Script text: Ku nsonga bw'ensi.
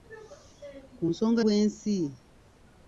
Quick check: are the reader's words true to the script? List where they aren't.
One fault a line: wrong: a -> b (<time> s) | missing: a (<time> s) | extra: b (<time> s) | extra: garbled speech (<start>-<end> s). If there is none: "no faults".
no faults